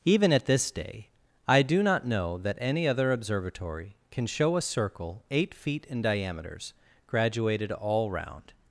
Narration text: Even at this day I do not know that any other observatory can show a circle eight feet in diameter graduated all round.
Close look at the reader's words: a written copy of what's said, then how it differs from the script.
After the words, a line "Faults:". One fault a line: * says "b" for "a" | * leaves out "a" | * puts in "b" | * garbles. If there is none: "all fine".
Even at this day I do not know that any other observatory can show a circle eight feet in diameters graduated all round.
Faults:
* says "diameters" for "diameter"